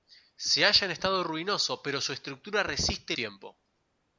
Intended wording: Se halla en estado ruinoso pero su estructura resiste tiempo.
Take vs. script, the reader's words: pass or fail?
pass